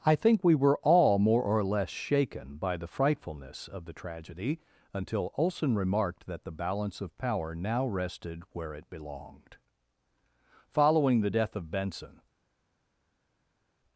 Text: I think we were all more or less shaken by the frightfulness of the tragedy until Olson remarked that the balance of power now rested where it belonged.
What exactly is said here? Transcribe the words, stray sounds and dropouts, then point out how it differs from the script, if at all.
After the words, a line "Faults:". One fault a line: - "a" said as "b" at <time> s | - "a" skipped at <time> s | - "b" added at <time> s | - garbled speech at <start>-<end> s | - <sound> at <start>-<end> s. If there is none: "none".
I think we were all more or less shaken by the frightfulness of the tragedy until Olson remarked that the balance of power now rested where it belonged. Following the death of Benson
Faults:
- "Following the death of Benson" added at 10.7 s